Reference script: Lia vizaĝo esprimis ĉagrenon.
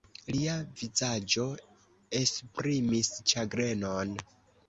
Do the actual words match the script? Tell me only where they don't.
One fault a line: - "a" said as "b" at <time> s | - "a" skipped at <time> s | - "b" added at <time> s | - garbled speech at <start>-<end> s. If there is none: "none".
none